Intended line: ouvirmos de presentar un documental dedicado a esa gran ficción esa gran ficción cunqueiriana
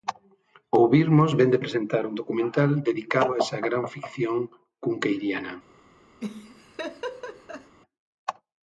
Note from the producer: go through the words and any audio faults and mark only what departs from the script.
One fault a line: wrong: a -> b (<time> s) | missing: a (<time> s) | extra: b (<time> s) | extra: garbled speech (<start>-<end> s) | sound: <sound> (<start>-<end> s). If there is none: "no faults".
extra: vén (1.4 s)
missing: esa gran ficción (4.4 s)
sound: laugh (6.2-7.8 s)